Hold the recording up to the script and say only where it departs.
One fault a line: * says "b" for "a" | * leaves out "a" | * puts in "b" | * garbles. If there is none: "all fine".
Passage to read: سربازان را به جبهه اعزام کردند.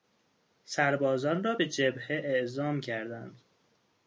all fine